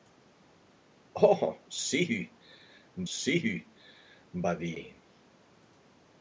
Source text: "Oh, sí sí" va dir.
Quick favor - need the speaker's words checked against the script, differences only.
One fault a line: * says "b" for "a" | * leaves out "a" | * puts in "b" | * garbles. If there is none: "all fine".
all fine